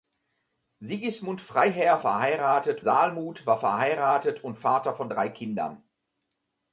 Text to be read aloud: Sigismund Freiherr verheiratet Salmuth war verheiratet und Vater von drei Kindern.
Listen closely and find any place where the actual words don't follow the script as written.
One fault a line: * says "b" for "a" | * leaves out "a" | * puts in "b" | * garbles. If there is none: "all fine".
all fine